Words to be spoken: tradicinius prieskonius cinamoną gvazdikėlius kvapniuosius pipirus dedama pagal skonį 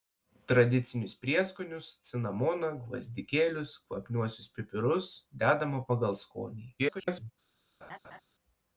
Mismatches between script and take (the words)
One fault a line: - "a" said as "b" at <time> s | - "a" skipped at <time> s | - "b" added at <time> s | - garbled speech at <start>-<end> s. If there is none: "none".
- garbled speech at 6.8-7.3 s